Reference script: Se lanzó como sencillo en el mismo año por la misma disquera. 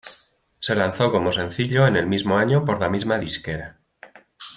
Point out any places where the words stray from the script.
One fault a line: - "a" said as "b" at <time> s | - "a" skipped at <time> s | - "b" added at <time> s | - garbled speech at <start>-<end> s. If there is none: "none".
none